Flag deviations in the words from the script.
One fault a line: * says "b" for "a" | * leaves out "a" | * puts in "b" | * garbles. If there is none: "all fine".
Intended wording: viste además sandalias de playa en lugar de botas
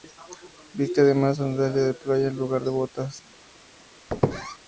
all fine